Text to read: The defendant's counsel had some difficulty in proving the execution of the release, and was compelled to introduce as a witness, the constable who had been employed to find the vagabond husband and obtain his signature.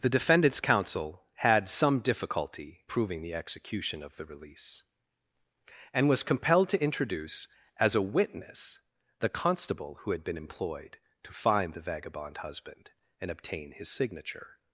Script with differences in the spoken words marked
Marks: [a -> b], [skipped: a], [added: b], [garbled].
The defendant's counsel had some difficulty [skipped: in] proving the execution of the release, and was compelled to introduce as a witness, the constable who had been employed to find the vagabond husband and obtain his signature.